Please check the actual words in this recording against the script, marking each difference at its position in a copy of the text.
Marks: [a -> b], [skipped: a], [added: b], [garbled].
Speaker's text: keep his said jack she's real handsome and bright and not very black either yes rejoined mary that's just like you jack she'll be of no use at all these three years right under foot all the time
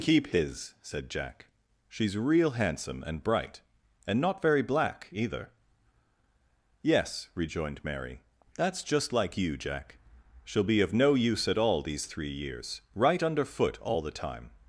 keep his said jack she's real handsome and bright and not very black either yes rejoined mary that's just like you jack she'll be of no use at all these three years right under foot all the time